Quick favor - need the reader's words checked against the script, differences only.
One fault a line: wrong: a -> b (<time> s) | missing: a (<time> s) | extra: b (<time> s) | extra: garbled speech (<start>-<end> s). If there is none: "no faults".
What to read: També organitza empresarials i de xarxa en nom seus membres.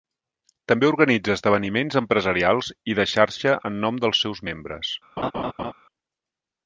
extra: esdeveniments (1.4 s)
extra: dels (4.1 s)